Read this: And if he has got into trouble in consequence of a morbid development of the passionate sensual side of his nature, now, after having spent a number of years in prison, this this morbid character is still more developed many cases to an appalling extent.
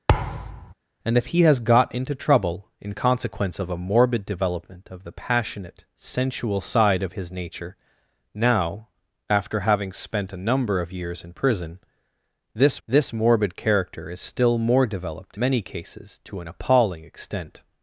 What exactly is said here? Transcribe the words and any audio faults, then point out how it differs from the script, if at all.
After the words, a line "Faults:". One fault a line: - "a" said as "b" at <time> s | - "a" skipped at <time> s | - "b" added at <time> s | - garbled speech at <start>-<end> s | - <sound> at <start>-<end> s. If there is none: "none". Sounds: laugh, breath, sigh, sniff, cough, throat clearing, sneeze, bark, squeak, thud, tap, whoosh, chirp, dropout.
And if he has got into trouble in consequence of a morbid development of the passionate sensual side of his nature, now, after having spent a number of years in prison, this this morbid character is still more developed many cases to an appalling extent.
Faults:
- thud at 0.1-0.7 s